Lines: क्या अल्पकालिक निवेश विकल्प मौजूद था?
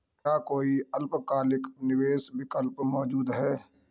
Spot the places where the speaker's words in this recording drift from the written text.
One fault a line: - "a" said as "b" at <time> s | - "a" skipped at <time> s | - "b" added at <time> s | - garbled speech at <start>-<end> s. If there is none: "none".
- "कोई" added at 0.5 s
- "था" said as "है" at 3.3 s